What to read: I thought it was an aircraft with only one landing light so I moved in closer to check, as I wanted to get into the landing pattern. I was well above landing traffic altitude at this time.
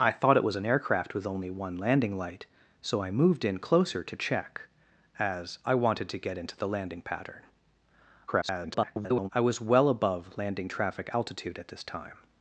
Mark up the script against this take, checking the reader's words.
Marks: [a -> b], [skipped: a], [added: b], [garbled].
I thought it was an aircraft with only one landing light so I moved in closer to check, as I wanted to get into the landing pattern. [garbled] I was well above landing traffic altitude at this time.